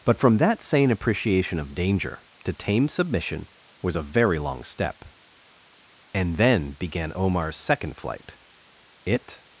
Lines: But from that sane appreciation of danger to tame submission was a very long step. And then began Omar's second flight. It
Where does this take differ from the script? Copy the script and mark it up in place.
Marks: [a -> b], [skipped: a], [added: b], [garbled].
But from that sane appreciation of danger to tame submission was a very long step. And then began Omar's second flight. It